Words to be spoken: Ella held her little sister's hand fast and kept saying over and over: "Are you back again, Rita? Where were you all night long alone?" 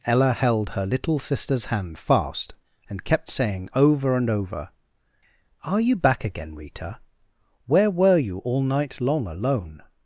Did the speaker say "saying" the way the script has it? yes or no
yes